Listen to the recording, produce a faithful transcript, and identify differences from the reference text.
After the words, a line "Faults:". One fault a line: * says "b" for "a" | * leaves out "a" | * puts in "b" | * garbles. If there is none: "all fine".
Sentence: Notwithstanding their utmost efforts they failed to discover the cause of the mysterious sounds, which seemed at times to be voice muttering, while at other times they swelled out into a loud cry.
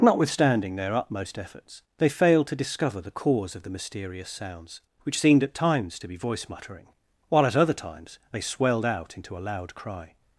Notwithstanding their utmost efforts they failed to discover the cause of the mysterious sounds, which seemed at times to be voice muttering, while at other times they swelled out into a loud cry.
Faults:
all fine